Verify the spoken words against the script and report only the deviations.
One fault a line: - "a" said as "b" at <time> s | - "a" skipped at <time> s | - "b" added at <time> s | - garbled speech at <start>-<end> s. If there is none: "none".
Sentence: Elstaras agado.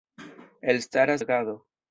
none